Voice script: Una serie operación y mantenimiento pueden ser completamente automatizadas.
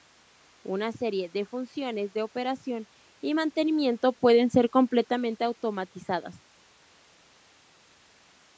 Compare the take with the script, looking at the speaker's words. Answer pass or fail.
fail